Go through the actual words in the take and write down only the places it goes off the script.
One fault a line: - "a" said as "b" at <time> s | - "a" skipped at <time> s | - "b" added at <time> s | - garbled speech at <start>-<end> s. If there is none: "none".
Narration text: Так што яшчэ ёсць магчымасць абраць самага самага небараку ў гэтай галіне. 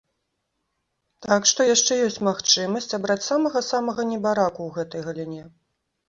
none